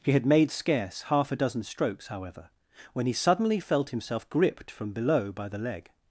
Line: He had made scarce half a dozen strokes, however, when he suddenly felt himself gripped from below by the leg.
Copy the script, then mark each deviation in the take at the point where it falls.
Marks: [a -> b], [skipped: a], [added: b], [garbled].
He had made scarce half a dozen strokes, however, when he suddenly felt himself gripped from below by the leg.